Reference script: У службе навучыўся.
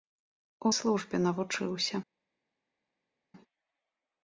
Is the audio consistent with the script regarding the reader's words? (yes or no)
yes